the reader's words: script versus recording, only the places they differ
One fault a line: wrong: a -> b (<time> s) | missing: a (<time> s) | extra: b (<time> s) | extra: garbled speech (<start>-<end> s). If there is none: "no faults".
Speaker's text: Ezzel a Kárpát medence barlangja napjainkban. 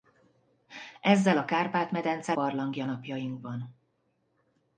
no faults